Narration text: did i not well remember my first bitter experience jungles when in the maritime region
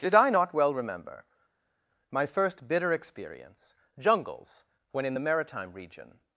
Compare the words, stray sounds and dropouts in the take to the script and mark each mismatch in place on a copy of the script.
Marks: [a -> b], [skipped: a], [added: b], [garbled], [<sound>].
did i not well remember my first bitter experience jungles when in the maritime region